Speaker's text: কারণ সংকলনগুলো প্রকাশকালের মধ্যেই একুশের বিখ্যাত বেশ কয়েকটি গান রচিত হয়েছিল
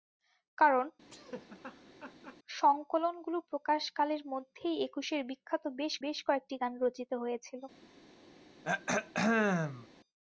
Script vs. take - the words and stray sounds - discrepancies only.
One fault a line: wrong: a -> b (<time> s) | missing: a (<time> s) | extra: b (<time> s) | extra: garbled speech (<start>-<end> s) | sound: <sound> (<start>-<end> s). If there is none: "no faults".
sound: laugh (1.1-2.4 s)
extra: বেশ (6.0 s)
sound: throat clearing (8.6-9.9 s)